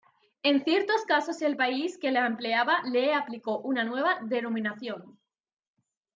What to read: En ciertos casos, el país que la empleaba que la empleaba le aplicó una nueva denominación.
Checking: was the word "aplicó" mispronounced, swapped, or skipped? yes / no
no